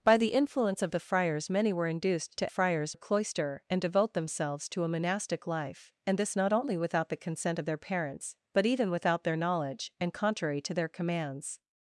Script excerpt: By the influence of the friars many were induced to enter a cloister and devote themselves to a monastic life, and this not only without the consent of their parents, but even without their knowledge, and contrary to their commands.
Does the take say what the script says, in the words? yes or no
no